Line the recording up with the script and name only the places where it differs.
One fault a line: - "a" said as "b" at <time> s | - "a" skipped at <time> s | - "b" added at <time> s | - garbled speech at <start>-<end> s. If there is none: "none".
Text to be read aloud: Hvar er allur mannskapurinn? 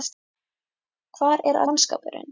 - "allur" skipped at 1.6 s